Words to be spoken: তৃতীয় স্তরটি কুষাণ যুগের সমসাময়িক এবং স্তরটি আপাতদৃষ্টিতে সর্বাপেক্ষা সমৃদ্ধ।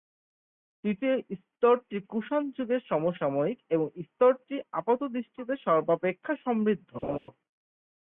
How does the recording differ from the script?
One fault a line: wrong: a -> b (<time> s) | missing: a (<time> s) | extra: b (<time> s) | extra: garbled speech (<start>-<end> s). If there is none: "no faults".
no faults